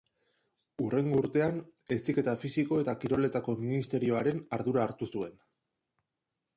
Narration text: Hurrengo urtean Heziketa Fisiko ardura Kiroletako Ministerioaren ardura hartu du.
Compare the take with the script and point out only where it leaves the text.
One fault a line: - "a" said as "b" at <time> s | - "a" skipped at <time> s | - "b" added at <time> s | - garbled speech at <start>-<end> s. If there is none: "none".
- "ardura" said as "eta" at 2.8 s
- "du" said as "zuen" at 5.2 s